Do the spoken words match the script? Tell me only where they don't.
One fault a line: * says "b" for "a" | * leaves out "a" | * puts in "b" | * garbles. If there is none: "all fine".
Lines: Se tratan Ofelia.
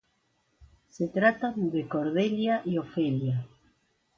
* puts in "de Cordelia y"